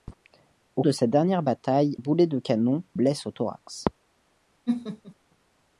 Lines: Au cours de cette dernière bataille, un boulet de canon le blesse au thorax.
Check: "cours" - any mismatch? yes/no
yes